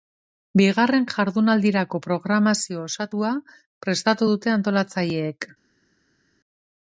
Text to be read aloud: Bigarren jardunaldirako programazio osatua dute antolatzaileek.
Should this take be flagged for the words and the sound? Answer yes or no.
yes